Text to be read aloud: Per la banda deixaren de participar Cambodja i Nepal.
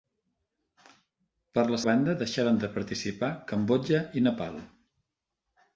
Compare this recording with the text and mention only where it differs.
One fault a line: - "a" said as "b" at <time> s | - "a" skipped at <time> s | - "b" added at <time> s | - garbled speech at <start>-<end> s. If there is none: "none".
none